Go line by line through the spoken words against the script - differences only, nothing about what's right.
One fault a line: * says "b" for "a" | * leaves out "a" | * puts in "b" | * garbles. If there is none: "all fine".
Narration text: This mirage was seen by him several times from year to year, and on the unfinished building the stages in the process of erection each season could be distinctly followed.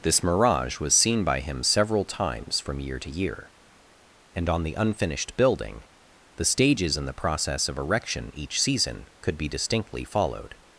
all fine